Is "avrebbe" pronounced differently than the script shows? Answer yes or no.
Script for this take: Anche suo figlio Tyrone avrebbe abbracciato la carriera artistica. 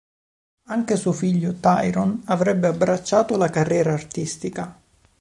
no